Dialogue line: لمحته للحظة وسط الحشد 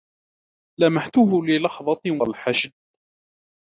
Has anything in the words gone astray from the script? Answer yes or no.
yes